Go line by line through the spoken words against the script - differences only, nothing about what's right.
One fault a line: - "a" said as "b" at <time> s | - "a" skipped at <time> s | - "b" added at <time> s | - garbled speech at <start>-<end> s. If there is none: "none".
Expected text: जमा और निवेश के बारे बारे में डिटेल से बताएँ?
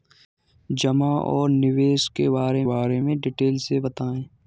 none